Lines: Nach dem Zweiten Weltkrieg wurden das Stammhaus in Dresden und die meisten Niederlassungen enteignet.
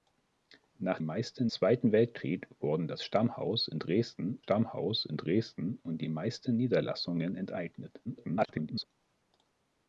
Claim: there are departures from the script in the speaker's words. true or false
true